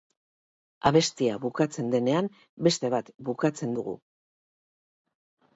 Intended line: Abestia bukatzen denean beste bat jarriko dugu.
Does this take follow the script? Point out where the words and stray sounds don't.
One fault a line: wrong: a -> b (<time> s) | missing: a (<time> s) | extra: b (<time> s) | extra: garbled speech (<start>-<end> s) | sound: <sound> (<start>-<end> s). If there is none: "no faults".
wrong: jarriko -> bukatzen (3.3 s)